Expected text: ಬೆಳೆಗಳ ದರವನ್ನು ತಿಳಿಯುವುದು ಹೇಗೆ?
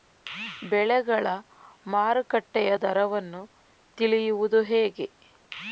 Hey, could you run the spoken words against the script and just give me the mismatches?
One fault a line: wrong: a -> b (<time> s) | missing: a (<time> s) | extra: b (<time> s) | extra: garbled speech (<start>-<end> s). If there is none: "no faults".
extra: ಮಾರುಕಟ್ಟೆಯ (1.9 s)